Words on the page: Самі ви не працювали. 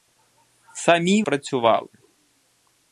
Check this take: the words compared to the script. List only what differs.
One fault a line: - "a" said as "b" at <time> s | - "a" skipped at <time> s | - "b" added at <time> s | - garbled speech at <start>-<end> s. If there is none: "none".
- "ви не" skipped at 1.2 s